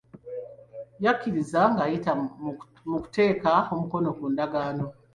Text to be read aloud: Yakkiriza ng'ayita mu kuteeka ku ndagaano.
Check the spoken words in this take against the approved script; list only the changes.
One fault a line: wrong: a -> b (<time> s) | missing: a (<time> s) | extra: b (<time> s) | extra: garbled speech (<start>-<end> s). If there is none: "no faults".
extra: omukono (3.7 s)